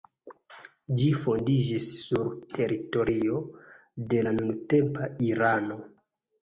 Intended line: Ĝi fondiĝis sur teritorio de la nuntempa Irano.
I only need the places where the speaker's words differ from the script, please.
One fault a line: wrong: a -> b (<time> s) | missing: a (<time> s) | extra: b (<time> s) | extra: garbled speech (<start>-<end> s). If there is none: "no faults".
no faults